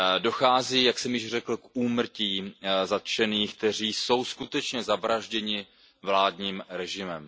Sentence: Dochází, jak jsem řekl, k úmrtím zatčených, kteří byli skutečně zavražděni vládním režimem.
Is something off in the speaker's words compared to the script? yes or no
yes